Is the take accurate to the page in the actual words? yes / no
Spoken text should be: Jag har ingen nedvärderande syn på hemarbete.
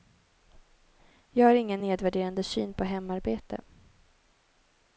yes